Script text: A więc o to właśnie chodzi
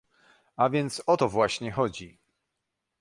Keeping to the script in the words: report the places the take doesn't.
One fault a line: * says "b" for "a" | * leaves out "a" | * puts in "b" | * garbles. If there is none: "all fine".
all fine